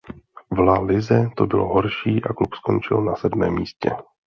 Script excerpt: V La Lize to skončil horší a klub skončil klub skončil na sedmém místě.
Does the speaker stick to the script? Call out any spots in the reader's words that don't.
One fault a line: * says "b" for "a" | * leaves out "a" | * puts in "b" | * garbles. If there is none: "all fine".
* says "bylo" for "skončil"
* leaves out "klub skončil"